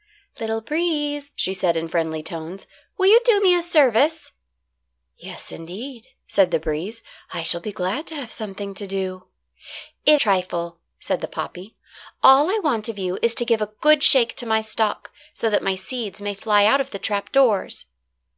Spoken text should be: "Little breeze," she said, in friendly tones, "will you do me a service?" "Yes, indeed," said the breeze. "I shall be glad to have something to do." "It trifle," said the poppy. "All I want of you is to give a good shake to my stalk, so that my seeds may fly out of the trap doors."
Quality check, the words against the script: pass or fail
pass